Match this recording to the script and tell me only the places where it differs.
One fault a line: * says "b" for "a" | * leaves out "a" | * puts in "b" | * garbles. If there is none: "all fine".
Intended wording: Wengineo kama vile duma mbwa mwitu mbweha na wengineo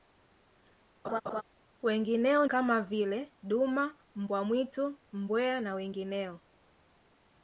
all fine